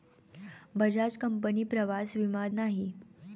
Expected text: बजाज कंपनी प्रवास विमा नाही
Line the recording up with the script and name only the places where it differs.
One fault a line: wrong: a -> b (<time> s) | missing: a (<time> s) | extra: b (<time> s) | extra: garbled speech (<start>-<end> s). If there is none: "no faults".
no faults